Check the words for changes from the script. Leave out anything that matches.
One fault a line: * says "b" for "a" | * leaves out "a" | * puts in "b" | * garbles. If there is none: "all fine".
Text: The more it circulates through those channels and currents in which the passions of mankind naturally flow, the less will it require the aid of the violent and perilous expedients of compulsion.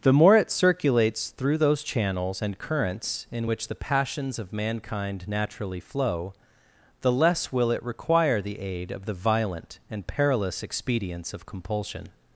all fine